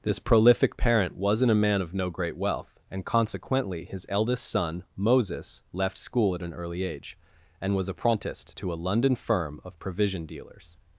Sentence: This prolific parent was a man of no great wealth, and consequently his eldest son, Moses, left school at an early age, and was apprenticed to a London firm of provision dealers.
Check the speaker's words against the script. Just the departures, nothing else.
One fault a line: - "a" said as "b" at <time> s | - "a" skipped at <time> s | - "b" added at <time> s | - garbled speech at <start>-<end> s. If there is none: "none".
- "was" said as "wasn't" at 1.1 s